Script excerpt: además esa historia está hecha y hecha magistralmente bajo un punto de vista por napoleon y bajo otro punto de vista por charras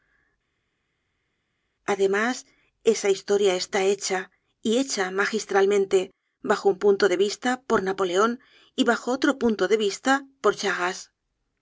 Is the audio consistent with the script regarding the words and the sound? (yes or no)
yes